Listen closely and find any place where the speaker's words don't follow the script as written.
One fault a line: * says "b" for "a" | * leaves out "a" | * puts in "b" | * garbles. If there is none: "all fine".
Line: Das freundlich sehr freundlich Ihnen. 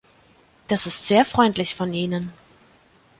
* says "ist" for "freundlich"
* puts in "von"